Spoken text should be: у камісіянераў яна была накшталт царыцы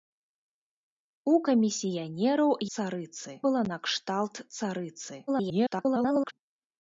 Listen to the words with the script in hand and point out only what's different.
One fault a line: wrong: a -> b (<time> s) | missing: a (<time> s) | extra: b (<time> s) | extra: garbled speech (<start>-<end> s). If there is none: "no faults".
wrong: яна -> царыцы (2.8 s)
extra: garbled speech (5.3-6.3 s)